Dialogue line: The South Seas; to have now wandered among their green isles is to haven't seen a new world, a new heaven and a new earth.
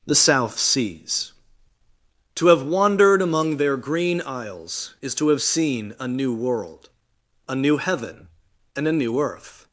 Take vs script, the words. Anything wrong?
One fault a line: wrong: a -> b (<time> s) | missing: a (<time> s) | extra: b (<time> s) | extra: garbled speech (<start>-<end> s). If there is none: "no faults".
missing: now (2.6 s)
wrong: haven't -> have (5.3 s)